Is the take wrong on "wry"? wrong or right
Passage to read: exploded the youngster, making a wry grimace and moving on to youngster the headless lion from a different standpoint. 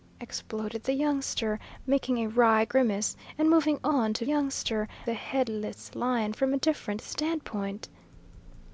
right